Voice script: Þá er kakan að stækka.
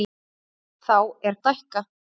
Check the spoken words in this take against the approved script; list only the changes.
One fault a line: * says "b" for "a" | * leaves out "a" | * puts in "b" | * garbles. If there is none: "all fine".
* leaves out "kakan að"